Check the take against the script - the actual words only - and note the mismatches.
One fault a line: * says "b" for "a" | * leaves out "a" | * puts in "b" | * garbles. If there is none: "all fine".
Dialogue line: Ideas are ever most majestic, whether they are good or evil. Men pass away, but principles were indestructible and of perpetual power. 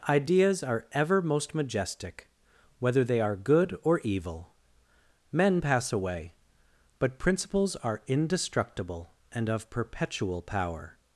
* says "are" for "were"